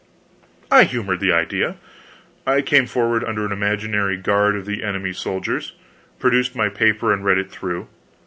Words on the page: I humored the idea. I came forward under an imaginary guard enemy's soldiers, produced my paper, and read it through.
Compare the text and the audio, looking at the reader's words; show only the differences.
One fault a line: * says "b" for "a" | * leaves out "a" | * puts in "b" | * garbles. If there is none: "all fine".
* puts in "of the"